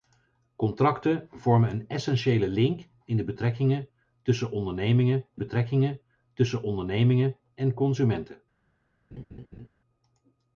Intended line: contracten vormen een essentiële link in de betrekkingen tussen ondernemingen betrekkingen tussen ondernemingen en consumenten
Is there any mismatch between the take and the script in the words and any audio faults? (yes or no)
yes